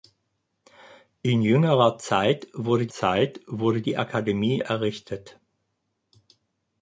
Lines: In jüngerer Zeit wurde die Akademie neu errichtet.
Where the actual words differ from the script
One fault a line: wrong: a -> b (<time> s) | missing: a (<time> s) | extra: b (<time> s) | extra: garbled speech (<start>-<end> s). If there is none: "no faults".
extra: Zeit wurde (2.9 s)
missing: neu (4.6 s)